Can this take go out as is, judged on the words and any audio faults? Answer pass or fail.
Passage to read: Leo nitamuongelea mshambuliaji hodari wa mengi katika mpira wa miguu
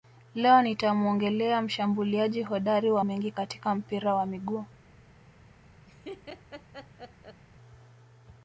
fail